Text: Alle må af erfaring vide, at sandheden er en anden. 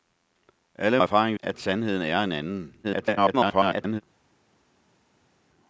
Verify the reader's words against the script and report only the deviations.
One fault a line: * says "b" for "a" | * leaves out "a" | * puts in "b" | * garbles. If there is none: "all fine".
* leaves out "må"
* leaves out "vide"
* garbles